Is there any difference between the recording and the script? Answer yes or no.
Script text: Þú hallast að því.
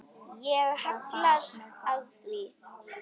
yes